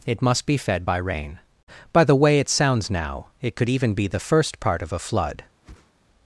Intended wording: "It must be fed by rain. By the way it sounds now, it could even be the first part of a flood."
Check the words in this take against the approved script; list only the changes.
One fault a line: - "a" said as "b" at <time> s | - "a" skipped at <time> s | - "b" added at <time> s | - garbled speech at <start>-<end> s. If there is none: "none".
none